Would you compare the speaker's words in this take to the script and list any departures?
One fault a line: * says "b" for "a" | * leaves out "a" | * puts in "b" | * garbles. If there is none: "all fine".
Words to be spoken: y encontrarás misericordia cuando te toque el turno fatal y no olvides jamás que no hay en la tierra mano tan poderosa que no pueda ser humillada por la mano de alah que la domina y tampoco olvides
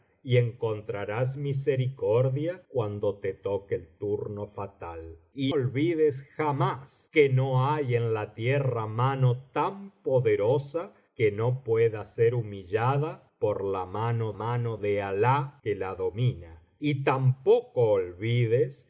* leaves out "no"
* puts in "mano"